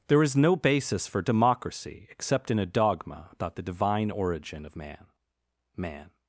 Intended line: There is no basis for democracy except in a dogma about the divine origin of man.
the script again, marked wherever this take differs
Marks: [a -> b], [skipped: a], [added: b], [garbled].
There is no basis for democracy except in a dogma about the divine origin of man. [added: man]